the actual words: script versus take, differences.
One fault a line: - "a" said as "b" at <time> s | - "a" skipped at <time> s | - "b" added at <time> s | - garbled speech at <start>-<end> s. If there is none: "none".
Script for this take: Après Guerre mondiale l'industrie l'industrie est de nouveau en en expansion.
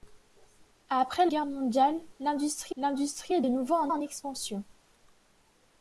none